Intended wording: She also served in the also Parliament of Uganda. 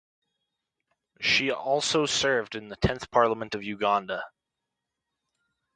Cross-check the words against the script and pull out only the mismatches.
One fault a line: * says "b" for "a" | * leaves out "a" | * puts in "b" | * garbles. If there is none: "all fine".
* says "tenth" for "also"